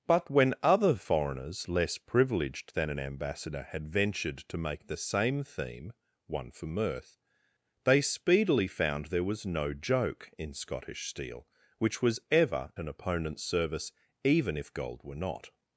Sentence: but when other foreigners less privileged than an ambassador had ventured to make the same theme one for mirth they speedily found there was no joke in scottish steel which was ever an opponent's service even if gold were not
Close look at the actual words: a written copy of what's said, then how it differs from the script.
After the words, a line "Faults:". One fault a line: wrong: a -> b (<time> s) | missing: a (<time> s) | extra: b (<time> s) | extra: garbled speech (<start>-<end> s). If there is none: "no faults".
but when other foreigners less privileged than an ambassador had ventured to make the same theme one for mirth they speedily found there was no joke in scottish steel which was ever an opponent's service even if gold were not
Faults:
no faults